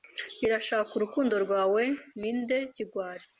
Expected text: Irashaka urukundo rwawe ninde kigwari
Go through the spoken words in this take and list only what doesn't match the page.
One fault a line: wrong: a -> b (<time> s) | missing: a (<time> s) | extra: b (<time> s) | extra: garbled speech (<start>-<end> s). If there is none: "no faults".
no faults